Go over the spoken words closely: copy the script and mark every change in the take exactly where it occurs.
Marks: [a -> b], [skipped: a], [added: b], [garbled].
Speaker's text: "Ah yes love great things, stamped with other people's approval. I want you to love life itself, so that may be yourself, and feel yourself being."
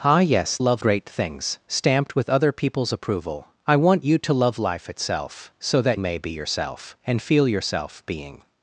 "Ah yes love great things, stamped with other people's approval. I want you to love life itself, so that may be yourself, and feel yourself being."